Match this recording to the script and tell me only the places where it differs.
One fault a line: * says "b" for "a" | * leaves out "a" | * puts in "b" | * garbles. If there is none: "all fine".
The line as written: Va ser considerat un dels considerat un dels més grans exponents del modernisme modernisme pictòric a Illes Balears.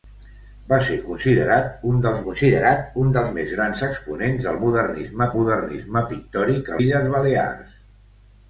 all fine